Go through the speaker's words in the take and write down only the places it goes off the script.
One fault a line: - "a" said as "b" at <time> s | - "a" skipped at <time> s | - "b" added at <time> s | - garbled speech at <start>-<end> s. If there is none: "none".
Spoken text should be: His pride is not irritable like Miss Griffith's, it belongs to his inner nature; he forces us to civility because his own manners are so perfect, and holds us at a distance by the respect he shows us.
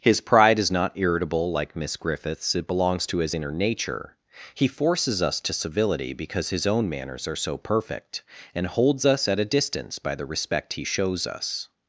none